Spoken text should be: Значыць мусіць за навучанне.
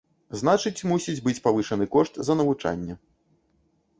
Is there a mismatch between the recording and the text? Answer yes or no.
yes